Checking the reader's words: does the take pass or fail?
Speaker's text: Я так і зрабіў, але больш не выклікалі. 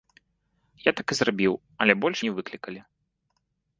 pass